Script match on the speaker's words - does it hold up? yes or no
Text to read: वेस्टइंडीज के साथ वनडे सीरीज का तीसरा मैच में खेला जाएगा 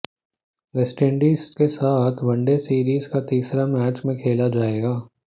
yes